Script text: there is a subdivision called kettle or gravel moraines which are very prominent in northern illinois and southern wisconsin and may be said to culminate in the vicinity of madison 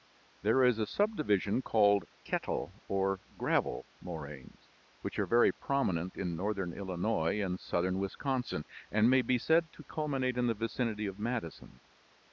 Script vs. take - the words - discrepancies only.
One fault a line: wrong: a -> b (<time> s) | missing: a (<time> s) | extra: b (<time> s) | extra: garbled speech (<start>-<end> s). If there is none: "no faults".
no faults